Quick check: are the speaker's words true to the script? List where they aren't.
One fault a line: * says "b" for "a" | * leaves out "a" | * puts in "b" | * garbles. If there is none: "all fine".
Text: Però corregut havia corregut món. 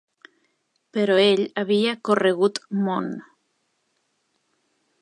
* says "ell" for "corregut"